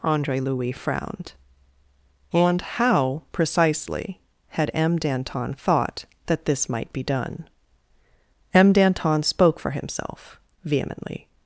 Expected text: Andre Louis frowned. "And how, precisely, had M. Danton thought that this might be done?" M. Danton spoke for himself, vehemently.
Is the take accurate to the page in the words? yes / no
yes